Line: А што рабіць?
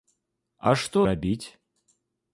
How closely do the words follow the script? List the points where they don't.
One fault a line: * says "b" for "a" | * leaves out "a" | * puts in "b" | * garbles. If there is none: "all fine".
all fine